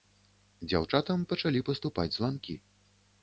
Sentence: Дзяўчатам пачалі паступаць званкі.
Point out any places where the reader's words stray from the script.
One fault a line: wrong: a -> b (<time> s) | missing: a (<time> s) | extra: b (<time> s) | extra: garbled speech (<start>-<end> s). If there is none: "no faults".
no faults